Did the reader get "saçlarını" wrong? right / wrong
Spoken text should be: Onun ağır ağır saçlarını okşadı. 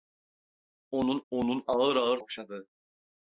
wrong